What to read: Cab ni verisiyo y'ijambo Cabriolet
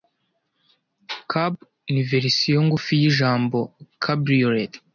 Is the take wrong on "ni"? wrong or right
right